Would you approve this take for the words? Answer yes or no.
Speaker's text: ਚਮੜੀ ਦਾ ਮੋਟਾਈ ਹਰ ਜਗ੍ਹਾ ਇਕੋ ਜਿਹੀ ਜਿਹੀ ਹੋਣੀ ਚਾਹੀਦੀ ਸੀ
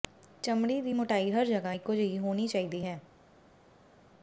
no